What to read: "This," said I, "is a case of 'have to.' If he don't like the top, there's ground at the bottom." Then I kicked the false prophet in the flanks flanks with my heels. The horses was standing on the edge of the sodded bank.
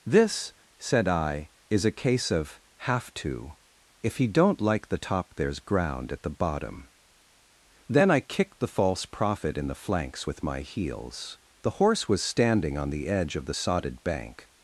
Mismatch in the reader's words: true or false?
true